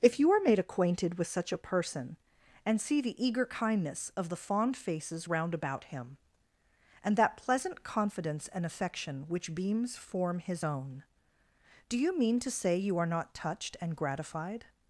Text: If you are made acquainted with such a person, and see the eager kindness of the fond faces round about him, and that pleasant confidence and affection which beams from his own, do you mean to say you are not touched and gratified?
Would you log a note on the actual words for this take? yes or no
yes